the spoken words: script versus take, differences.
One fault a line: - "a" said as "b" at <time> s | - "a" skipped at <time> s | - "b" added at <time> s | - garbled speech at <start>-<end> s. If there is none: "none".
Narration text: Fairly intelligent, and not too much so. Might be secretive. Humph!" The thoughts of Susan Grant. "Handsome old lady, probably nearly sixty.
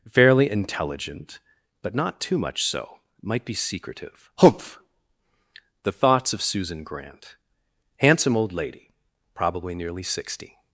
- "and" said as "but" at 1.8 s